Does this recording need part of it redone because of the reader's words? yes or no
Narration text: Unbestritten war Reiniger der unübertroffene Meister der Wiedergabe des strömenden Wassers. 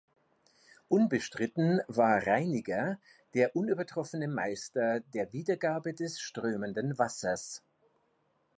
no